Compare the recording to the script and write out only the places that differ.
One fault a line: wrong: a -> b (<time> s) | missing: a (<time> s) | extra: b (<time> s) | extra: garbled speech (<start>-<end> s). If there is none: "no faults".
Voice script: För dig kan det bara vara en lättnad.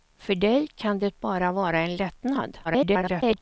extra: garbled speech (2.6-3.4 s)